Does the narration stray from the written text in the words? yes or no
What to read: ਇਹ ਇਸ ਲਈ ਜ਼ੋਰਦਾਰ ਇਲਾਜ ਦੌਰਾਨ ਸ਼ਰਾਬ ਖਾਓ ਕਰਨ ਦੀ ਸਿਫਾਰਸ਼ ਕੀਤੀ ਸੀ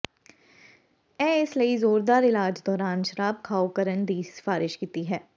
yes